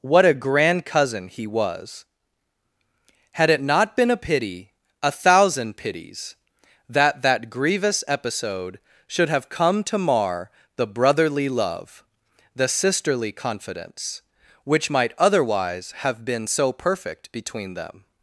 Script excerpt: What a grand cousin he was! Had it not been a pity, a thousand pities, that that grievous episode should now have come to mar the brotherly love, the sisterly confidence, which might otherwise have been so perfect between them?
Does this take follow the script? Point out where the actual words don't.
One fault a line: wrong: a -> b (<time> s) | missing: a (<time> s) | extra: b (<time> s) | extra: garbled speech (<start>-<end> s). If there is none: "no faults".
missing: now (9.3 s)